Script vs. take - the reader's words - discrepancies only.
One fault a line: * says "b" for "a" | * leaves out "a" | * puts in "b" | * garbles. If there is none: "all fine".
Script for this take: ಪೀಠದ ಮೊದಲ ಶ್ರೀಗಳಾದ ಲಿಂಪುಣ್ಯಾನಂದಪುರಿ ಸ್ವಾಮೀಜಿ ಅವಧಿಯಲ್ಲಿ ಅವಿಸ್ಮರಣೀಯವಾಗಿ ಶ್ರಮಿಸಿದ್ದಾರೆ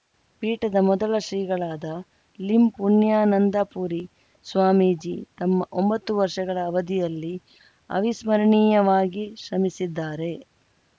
* puts in "ತಮ್ಮ ಒಂಬತ್ತು ವರ್ಷಗಳ"